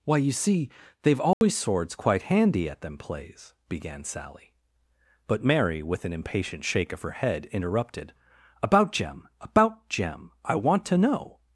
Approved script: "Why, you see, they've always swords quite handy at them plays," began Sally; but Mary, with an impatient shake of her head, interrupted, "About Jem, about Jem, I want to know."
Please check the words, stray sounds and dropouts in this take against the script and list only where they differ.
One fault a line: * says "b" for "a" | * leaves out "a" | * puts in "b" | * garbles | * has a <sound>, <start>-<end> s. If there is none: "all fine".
* has a dropout, 1.3-1.4 s